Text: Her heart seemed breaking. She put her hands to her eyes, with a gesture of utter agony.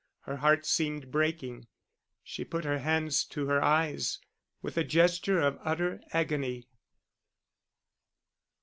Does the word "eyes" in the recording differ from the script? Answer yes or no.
no